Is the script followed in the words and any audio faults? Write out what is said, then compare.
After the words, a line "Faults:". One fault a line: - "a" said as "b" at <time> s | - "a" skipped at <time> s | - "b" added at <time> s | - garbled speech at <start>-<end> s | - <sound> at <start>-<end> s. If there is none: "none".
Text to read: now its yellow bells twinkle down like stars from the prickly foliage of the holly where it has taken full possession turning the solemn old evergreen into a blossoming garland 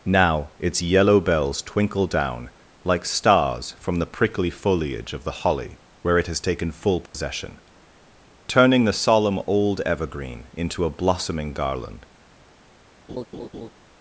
now its yellow bells twinkle down like stars from the prickly foliage of the holly where it has taken full possession turning the solemn old evergreen into a blossoming garland
Faults:
- dropout at 7.1-7.1 s
- laugh at 13.1-13.7 s